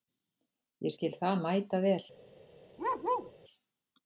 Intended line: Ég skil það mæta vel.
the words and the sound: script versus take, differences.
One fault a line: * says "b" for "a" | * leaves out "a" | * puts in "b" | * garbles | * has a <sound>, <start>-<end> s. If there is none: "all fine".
* has a bark, 2.8-3.3 s